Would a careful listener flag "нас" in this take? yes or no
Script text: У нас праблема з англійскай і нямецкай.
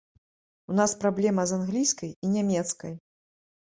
no